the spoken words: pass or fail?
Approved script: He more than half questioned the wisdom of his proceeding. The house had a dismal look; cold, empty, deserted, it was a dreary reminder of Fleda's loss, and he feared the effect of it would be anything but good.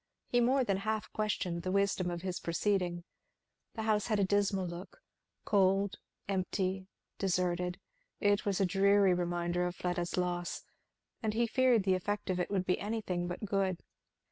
pass